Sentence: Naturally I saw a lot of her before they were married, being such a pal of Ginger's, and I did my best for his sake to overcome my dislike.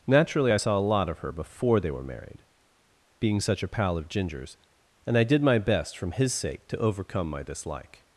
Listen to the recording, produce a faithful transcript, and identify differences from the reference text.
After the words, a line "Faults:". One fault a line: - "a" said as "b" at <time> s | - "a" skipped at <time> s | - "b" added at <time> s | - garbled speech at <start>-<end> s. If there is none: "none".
Naturally I saw a lot of her before they were married, being such a pal of Ginger's, and I did my best from his sake to overcome my dislike.
Faults:
- "for" said as "from" at 6.0 s